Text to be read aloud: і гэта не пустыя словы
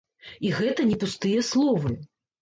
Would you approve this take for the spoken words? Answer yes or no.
yes